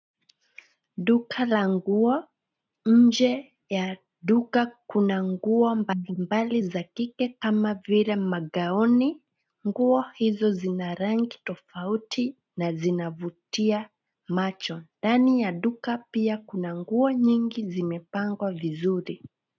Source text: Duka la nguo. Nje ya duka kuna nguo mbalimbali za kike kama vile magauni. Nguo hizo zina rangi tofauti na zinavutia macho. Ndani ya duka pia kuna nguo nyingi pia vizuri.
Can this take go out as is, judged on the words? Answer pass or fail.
fail